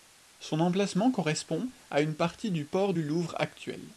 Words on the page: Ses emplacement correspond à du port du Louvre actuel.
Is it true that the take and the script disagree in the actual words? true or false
true